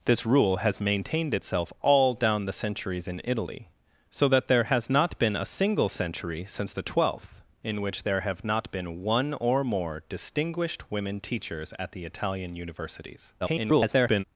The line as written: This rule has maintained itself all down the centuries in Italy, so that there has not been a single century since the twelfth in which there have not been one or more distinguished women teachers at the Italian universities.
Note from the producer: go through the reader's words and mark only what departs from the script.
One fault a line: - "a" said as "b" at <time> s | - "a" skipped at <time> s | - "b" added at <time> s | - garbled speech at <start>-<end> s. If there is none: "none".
- garbled speech at 13.4-14.2 s